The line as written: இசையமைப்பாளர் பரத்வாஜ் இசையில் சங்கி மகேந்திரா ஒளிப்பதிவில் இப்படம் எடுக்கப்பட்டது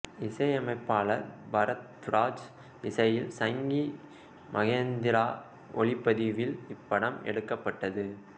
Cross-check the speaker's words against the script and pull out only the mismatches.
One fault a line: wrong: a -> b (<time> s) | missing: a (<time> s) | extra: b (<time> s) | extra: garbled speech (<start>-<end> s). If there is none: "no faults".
no faults